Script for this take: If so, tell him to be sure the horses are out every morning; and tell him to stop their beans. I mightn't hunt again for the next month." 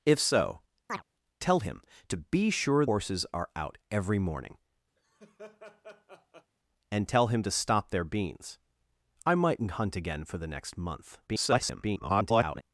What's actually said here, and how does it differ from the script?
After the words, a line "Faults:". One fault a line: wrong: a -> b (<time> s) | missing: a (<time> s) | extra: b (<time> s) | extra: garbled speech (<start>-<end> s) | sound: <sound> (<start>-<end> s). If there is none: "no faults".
If so, tell him to be sure horses are out every morning; and tell him to stop their beans. I mightn't hunt again for the next month." [garbled]
Faults:
sound: chirp (0.9-1.0 s)
missing: the (2.8 s)
sound: laugh (5.0-6.5 s)
extra: garbled speech (11.3-12.6 s)